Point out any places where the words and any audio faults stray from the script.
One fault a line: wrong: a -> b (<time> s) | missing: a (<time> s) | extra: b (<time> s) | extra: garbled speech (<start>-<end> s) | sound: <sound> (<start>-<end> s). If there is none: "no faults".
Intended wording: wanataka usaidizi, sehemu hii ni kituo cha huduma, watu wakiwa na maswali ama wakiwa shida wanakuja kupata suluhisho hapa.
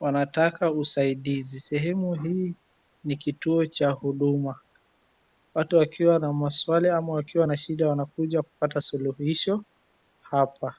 extra: na (7.5 s)